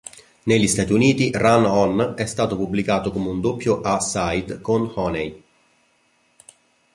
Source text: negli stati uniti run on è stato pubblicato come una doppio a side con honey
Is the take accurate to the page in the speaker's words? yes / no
no